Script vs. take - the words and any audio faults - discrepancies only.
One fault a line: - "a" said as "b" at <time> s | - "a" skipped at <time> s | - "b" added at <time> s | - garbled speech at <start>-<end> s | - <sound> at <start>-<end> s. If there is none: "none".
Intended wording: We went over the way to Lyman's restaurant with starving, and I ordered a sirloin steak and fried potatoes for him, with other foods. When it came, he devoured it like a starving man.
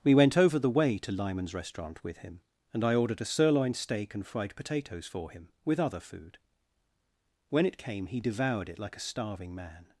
- "starving" said as "him" at 2.2 s
- "foods" said as "food" at 6.0 s